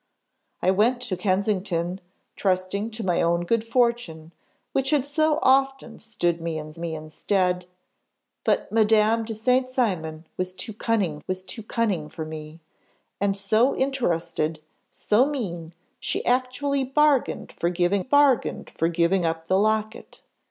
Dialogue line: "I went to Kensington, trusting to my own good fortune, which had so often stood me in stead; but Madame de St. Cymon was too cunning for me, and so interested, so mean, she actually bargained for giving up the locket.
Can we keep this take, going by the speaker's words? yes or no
no